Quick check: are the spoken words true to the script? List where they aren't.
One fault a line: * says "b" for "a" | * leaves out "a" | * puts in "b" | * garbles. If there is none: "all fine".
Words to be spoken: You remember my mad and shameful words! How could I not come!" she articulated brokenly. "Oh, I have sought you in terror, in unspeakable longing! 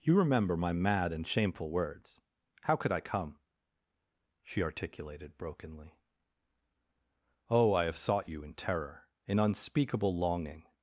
* leaves out "not"